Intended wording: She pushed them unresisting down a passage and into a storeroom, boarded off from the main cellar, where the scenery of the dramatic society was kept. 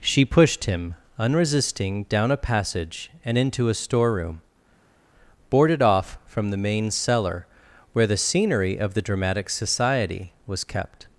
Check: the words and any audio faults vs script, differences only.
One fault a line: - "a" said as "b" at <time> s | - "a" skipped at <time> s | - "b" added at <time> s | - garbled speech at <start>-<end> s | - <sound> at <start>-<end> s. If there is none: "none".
- "them" said as "him" at 0.6 s